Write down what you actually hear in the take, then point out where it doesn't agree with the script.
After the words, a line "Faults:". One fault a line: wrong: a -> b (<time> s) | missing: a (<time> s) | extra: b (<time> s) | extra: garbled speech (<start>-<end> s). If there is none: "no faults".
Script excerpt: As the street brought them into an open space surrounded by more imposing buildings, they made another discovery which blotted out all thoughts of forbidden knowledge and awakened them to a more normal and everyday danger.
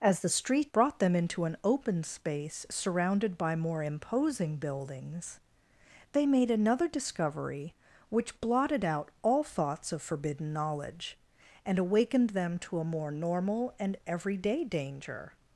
As the street brought them into an open space surrounded by more imposing buildings, they made another discovery which blotted out all thoughts of forbidden knowledge and awakened them to a more normal and everyday danger.
Faults:
no faults